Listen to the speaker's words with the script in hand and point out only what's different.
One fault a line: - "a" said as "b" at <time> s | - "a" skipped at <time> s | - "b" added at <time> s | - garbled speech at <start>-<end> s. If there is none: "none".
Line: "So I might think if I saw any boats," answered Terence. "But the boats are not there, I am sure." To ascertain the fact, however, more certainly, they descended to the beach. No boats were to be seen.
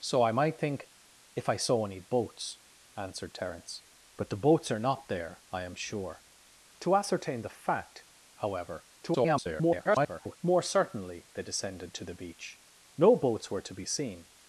- garbled speech at 9.0-10.4 s